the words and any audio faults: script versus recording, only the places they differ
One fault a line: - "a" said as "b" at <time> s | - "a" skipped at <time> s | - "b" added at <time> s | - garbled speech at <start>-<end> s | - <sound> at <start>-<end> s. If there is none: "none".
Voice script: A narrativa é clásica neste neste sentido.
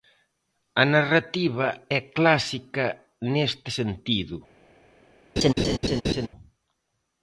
- "neste" skipped at 3.7 s
- laugh at 5.4-6.3 s